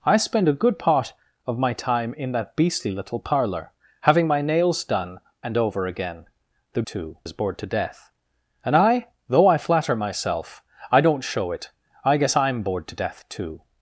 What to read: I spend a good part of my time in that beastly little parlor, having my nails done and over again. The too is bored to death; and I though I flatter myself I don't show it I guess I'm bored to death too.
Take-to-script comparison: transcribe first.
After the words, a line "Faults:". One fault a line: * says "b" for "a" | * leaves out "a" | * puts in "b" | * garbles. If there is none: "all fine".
I spend a good part of my time in that beastly little parlor, having my nails done and over again. The too is bored to death; and I though I flatter myself I don't show it I guess I'm bored to death too.
Faults:
all fine